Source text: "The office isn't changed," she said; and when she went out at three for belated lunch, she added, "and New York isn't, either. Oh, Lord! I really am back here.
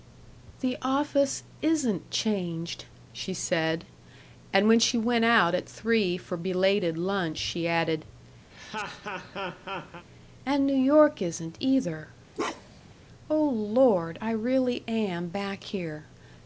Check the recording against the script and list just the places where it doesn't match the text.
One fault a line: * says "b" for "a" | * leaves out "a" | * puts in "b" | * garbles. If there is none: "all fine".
all fine